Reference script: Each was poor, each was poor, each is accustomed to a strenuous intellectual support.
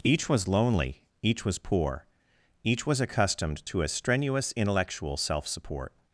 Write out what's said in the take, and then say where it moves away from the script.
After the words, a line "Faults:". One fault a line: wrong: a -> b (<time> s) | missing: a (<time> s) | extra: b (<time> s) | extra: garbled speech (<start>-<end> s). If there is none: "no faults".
Each was lonely, each was poor, each was accustomed to a strenuous intellectual self support.
Faults:
wrong: poor -> lonely (0.5 s)
wrong: is -> was (2.9 s)
extra: self (5.2 s)